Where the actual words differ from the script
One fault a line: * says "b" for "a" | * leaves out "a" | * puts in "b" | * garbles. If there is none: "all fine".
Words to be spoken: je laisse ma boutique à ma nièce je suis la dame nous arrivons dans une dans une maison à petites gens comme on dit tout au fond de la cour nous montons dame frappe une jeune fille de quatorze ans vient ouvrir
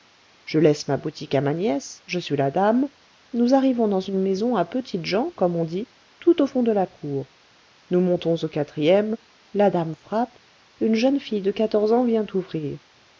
* leaves out "dans une"
* puts in "au quatrième la"